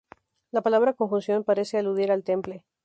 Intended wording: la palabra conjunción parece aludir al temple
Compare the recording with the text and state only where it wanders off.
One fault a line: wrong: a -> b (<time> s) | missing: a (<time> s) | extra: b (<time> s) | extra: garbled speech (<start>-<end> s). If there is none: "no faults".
no faults